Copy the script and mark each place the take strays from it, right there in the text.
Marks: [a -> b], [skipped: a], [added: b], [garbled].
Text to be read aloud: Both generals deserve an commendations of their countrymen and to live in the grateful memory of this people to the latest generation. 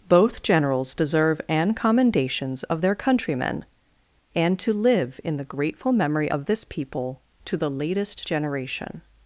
Both generals deserve an commendations of their countrymen and to live in the grateful memory of this people to the latest generation.